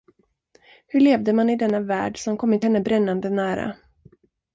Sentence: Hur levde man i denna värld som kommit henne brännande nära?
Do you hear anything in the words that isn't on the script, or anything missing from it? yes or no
no